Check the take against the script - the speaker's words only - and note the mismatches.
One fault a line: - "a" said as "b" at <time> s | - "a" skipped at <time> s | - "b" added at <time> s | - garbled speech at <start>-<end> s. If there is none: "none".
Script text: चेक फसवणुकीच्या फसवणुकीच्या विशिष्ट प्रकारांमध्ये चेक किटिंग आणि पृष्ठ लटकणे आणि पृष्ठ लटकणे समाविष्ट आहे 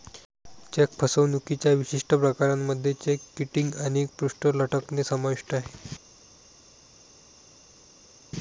- "फसवणुकीच्या" skipped at 1.7 s
- "आणि पृष्ठ लटकणे" skipped at 5.0 s